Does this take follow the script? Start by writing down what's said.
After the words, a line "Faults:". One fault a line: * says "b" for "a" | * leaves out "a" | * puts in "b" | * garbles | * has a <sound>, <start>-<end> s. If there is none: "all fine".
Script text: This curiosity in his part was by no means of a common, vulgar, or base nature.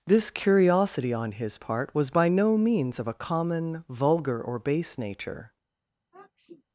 This curiosity on his part was by no means of a common, vulgar, or base nature.
Faults:
* says "on" for "in"
* has a sniff, 6.1-6.6 s